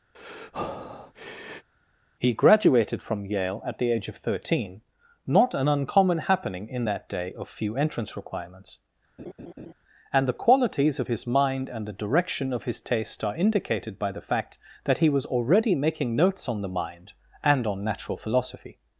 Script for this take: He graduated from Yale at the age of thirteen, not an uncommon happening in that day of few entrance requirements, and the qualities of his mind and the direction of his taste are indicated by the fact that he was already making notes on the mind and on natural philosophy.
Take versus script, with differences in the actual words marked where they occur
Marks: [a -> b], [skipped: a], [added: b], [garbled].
He graduated from Yale at the age of thirteen, not an uncommon happening in that day of few entrance requirements, and the qualities of his mind and the direction of his taste are indicated by the fact that he was already making notes on the mind and on natural philosophy.